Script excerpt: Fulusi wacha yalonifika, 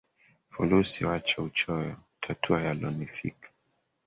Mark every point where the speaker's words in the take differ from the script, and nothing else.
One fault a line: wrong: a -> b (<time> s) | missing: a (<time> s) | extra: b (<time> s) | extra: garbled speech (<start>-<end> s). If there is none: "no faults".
extra: uchoyo tatua (1.4 s)